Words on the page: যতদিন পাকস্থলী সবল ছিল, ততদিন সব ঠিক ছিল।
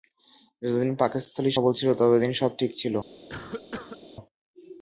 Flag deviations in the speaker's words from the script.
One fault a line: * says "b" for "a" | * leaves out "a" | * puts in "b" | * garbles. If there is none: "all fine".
all fine